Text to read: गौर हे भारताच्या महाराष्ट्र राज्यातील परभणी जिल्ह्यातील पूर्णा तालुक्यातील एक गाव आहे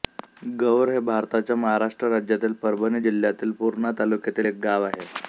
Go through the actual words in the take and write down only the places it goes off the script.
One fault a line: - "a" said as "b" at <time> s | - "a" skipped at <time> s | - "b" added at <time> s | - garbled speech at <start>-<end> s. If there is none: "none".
none